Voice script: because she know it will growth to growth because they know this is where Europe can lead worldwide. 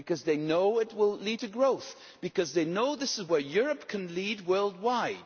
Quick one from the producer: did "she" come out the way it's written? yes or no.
no